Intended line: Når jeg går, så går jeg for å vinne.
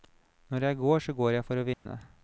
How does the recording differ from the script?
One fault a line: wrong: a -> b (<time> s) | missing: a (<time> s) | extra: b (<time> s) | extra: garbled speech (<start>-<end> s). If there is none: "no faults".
no faults